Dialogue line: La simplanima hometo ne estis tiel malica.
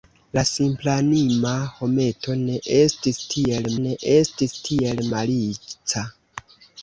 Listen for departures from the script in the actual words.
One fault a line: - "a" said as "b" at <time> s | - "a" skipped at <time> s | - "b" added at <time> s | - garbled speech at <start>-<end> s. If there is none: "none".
- "ne estis tiel" added at 3.8 s